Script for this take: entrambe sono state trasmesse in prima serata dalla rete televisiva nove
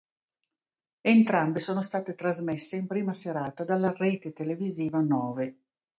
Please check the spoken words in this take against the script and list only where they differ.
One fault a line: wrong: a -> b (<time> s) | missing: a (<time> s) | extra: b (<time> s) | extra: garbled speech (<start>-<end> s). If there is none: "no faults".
no faults